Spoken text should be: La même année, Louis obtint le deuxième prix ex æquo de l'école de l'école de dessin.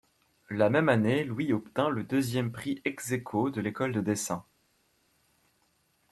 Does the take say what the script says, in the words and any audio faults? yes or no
no